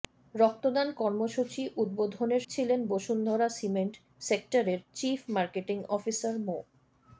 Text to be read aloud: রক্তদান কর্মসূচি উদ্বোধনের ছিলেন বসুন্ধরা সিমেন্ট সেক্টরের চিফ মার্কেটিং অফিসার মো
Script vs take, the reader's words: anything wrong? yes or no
no